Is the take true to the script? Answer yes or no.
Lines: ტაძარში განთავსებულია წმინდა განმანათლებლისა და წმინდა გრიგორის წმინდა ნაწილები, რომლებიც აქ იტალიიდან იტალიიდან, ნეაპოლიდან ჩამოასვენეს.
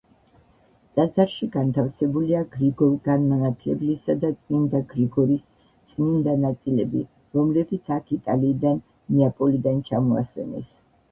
no